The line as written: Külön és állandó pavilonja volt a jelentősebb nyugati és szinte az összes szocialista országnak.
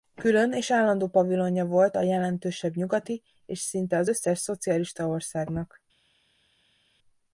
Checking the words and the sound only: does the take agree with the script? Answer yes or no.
yes